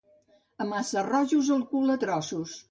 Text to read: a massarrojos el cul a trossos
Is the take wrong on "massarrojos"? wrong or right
right